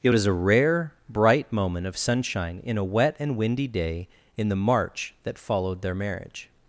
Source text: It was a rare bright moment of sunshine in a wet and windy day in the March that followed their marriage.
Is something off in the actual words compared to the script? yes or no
no